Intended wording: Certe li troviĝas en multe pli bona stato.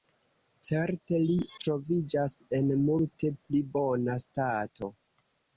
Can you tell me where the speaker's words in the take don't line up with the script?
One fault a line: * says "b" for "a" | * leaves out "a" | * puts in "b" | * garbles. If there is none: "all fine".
all fine